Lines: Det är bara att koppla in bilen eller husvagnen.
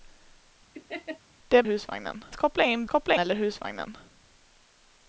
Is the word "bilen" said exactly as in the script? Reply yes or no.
no